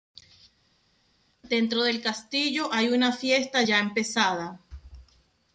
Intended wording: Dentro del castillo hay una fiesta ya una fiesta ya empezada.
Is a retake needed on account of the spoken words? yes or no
yes